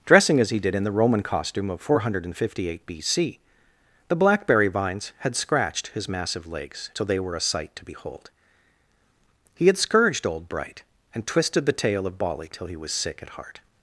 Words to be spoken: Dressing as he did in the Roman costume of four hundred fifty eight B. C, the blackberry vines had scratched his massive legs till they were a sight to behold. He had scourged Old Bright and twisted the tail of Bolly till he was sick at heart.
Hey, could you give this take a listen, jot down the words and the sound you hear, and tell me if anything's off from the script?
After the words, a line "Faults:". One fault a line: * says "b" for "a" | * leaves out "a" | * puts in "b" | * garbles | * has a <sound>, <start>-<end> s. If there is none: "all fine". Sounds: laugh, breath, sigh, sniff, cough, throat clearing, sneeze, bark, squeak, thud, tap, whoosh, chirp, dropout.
Dressing as he did in the Roman costume of four hundred fifty eight B. C, the blackberry vines had scratched his massive legs till they were a sight to behold. He had scourged Old Bright and twisted the tail of Bolly till he was sick at heart.
Faults:
all fine